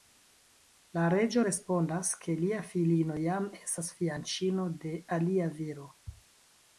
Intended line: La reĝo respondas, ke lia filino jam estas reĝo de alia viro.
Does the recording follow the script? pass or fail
fail